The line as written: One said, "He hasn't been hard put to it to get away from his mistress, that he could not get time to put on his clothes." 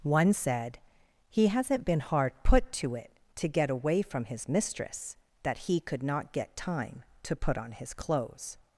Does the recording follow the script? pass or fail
pass